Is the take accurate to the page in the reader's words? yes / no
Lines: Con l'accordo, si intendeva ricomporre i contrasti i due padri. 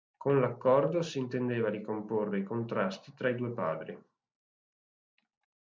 no